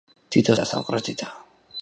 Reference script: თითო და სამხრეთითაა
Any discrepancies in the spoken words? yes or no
no